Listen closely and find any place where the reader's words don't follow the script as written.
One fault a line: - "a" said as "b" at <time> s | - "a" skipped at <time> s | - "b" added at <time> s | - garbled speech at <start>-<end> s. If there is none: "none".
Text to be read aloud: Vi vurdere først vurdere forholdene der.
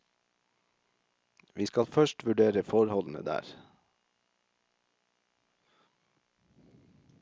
- "vurdere" said as "skal" at 1.6 s